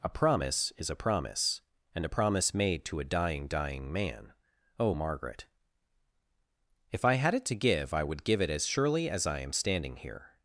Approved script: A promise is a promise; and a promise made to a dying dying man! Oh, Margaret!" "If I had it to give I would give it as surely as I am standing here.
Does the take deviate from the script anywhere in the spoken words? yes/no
no